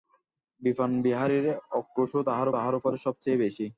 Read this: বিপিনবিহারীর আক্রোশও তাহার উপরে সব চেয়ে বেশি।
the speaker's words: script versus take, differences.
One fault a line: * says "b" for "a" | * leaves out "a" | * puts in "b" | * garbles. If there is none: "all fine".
* puts in "তাহার"